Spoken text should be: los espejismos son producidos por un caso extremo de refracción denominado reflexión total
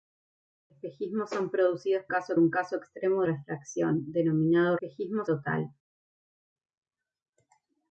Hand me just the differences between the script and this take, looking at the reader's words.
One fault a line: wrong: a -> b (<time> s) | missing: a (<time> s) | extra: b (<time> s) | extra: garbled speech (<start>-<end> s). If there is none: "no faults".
wrong: por -> caso (2.1 s)
missing: de (3.2 s)
wrong: reflexión -> espejismos (4.8 s)